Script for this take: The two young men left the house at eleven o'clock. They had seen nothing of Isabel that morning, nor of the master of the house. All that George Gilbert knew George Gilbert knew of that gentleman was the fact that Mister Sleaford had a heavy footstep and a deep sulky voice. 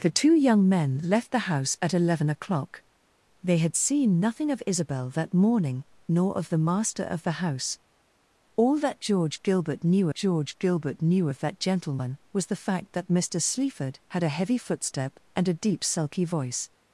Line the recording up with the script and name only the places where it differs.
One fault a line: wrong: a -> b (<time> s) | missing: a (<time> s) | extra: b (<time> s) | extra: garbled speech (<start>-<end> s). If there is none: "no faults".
no faults